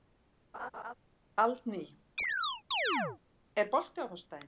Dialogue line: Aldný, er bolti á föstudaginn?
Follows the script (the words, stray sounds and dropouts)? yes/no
no